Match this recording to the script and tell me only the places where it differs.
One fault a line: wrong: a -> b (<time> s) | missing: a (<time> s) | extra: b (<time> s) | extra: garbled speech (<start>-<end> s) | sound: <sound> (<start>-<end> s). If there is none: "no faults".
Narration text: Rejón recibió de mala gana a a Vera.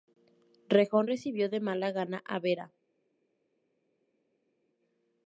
missing: a (2.4 s)